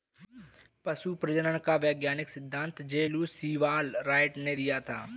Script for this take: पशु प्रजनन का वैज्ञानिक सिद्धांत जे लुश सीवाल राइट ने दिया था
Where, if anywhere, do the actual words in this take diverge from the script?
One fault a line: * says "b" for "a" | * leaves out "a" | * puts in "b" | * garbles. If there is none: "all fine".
all fine